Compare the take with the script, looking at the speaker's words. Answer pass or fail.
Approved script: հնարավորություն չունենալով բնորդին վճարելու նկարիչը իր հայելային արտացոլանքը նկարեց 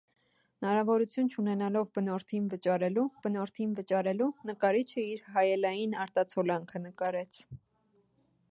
fail